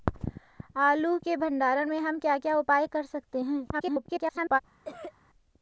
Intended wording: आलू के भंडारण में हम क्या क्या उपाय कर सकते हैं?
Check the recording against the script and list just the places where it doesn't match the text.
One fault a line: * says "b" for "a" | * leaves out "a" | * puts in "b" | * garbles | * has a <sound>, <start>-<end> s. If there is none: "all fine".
* garbles
* has a cough, 4.8-5.1 s